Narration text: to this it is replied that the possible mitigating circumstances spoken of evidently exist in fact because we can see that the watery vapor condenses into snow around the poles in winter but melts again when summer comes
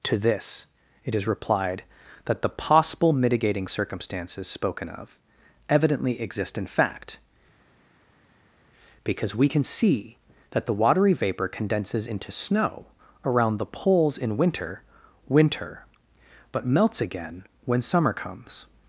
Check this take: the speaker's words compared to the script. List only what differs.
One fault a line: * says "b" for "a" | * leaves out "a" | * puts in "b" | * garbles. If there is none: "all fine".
* puts in "winter"